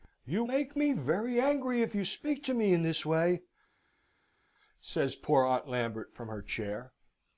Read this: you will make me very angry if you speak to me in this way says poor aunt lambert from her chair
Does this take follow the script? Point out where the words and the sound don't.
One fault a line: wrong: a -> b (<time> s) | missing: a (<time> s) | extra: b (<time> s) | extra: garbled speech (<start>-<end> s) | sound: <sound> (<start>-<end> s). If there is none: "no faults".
missing: will (0.4 s)